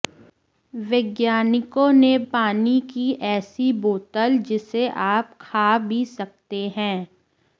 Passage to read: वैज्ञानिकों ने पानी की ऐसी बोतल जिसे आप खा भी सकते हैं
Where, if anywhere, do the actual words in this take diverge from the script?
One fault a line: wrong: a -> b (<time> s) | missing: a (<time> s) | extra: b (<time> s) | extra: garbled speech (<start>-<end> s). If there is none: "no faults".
no faults